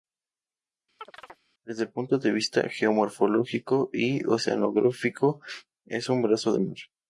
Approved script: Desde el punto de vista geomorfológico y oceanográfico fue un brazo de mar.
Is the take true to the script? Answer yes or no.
no